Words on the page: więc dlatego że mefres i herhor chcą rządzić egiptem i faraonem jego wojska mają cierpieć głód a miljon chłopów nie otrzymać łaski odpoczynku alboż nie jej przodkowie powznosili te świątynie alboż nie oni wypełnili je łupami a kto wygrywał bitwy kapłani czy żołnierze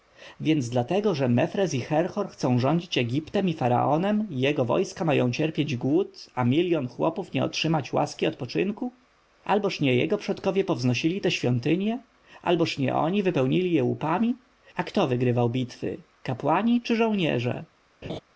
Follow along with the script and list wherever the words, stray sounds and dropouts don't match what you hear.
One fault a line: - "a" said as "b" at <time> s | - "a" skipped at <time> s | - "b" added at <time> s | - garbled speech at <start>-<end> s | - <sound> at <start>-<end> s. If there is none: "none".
- "jej" said as "jego" at 9.9 s
- laugh at 18.0-18.2 s